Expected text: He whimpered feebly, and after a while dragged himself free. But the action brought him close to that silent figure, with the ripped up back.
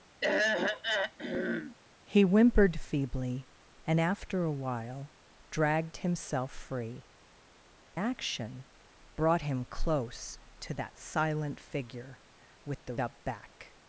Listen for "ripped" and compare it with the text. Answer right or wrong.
wrong